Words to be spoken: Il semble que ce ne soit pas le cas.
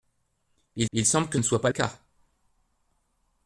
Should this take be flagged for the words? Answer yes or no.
yes